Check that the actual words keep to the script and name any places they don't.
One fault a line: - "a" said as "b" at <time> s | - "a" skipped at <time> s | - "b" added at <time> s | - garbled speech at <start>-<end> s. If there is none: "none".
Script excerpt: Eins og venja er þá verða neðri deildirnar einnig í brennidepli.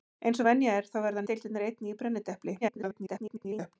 - "neðri" skipped at 1.3 s
- garbled speech at 2.6-3.8 s